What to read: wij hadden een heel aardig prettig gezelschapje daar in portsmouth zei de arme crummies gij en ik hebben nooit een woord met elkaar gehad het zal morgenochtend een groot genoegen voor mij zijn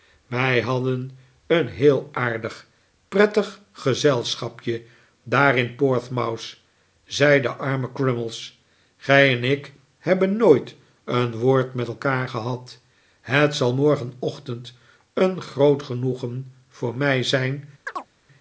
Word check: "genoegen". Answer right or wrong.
right